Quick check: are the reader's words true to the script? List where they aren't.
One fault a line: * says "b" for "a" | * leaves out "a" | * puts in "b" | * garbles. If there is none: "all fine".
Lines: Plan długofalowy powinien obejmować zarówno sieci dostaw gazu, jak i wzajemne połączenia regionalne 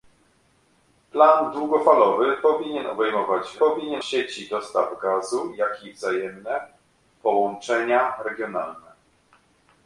* says "powinien" for "zarówno"